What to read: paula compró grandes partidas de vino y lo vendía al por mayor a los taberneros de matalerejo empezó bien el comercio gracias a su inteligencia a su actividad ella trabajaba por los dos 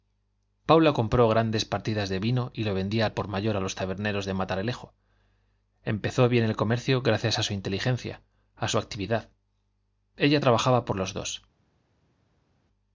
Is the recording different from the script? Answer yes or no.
no